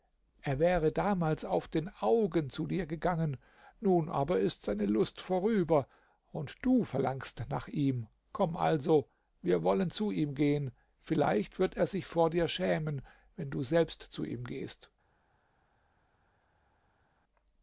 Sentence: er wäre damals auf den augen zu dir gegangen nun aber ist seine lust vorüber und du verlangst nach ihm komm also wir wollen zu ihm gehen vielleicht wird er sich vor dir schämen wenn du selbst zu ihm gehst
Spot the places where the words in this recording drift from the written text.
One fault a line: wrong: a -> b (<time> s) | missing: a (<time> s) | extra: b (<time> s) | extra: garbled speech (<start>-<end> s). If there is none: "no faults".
no faults